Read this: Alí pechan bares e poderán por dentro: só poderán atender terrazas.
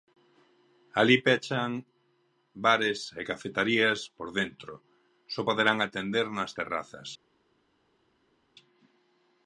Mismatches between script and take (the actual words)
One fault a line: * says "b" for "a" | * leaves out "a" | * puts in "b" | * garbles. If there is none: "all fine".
* says "cafeterías" for "poderán"
* puts in "nas"